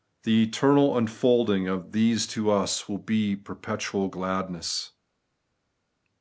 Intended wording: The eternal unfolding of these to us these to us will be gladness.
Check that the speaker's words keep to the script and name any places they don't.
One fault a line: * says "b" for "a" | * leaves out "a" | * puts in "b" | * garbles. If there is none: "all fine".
* leaves out "these to us"
* puts in "perpetual"